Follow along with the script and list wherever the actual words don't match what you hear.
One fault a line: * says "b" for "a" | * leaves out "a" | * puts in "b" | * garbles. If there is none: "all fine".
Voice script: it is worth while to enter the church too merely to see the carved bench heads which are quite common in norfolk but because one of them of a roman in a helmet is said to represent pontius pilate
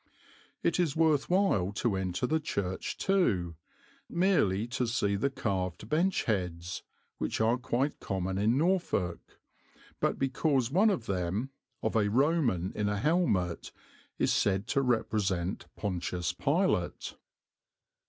all fine